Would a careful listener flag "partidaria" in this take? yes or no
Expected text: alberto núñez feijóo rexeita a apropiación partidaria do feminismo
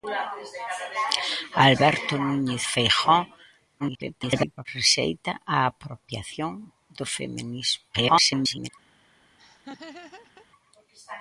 yes